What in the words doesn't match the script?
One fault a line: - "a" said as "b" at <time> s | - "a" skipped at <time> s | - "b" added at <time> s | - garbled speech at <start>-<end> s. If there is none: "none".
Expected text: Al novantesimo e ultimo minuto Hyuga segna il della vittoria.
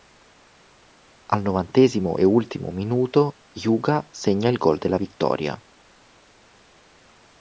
- "gol" added at 4.6 s